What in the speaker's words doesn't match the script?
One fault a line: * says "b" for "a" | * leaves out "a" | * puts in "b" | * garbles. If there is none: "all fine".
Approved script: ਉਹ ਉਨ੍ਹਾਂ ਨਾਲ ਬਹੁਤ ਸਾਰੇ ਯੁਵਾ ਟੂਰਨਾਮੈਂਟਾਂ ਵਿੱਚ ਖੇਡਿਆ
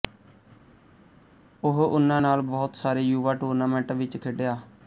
all fine